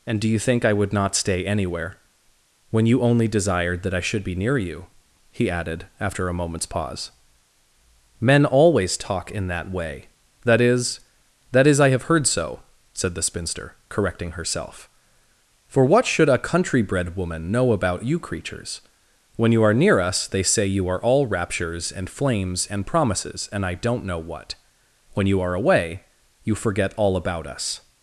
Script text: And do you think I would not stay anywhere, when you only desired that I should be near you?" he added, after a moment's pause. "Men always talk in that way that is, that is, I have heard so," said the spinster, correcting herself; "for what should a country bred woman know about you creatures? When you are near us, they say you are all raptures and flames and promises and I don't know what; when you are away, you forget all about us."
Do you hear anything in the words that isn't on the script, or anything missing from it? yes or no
no